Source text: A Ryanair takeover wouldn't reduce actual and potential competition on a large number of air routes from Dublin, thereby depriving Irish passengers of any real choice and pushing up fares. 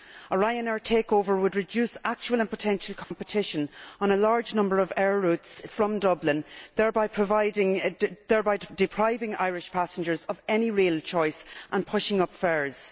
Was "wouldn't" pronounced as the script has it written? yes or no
no